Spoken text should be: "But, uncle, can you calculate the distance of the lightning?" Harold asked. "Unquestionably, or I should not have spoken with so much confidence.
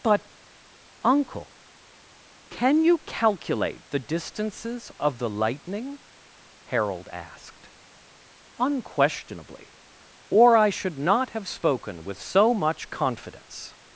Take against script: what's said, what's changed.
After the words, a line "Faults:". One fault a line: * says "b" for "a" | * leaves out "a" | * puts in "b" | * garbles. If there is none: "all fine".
"But, uncle, can you calculate the distances of the lightning?" Harold asked. "Unquestionably, or I should not have spoken with so much confidence.
Faults:
* says "distances" for "distance"